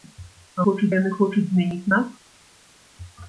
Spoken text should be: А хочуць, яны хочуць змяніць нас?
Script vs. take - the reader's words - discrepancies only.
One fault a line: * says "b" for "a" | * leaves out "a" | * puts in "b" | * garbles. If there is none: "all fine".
all fine